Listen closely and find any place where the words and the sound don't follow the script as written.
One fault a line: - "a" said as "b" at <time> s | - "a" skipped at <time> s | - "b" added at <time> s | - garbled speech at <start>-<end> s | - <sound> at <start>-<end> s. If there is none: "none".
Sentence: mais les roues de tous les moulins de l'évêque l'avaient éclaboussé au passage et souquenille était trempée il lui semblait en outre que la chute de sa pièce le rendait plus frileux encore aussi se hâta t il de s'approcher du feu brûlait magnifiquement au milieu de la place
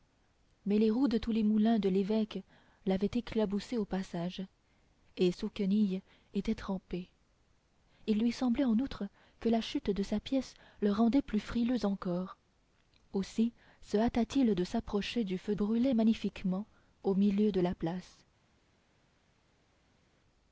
none